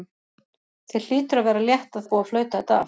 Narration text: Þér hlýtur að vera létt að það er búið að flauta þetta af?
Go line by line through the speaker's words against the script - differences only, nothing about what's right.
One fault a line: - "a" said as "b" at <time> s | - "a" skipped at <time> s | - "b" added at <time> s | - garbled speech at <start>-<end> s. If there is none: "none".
- "það" skipped at 2.1 s